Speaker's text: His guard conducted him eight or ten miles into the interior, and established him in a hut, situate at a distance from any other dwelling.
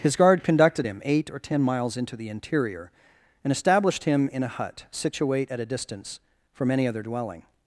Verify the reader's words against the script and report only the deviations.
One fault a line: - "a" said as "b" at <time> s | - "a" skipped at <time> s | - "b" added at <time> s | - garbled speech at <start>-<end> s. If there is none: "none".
none